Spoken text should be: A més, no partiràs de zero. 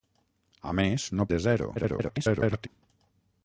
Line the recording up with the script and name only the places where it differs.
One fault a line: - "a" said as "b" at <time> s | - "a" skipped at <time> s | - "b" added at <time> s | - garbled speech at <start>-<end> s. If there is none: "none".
- "partiràs" skipped at 1.3 s
- garbled speech at 1.7-2.7 s